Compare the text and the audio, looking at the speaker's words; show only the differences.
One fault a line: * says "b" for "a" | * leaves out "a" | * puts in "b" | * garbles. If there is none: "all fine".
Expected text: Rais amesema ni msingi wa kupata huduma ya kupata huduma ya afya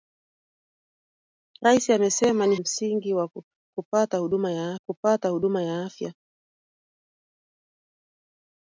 all fine